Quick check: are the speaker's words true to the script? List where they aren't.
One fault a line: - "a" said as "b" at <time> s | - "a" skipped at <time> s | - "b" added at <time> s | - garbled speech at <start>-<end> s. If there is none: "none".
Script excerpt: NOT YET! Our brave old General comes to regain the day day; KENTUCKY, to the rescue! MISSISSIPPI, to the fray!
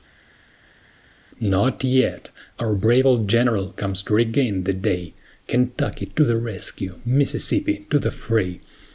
- "day" skipped at 5.1 s